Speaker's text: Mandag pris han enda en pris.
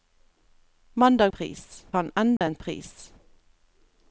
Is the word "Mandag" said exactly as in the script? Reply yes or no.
yes